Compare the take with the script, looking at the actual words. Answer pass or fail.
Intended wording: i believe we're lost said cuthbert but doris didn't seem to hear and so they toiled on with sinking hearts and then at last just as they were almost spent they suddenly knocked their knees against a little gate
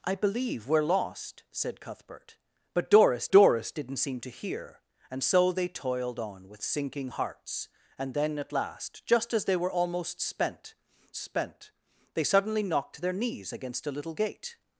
fail